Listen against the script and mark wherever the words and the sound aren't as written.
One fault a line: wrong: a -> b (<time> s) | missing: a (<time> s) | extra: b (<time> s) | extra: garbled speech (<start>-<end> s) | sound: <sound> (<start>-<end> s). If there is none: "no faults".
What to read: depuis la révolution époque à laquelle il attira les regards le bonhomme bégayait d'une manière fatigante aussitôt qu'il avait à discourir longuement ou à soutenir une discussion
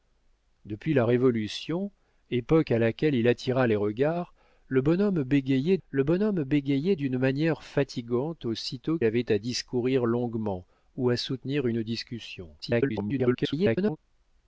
extra: le bonhomme bégayait (5.9 s)
missing: qu'il (9.0 s)
extra: garbled speech (12.6-14.0 s)